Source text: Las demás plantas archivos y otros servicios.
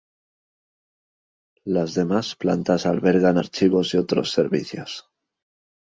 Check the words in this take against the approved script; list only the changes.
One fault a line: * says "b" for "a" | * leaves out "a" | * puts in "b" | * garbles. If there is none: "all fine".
* puts in "albergan"